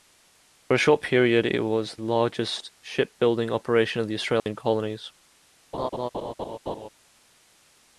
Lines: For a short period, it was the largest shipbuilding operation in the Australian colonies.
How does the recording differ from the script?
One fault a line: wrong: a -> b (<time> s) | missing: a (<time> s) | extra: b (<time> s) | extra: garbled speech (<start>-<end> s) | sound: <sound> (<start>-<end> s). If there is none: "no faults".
missing: the (2.0 s)
sound: dropout (4.4-4.5 s)
sound: laugh (5.7-6.9 s)